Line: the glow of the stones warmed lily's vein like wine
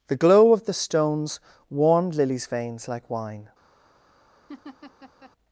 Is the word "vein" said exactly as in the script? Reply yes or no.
no